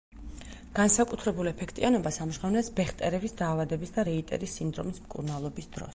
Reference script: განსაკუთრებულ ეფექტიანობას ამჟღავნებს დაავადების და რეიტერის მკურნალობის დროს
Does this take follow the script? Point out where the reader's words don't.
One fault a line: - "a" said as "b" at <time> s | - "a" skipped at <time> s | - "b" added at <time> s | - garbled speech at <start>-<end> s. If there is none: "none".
- "ბეხტერევის" added at 2.8 s
- "სინდრომის" added at 4.6 s